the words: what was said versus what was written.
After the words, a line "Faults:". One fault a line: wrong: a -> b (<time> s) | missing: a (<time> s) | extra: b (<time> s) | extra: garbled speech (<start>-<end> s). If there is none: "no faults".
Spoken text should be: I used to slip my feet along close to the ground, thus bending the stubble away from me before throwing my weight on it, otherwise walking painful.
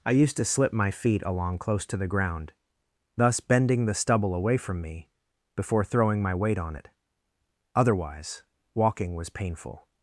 I used to slip my feet along close to the ground, thus bending the stubble away from me before throwing my weight on it, otherwise walking was painful.
Faults:
extra: was (9.1 s)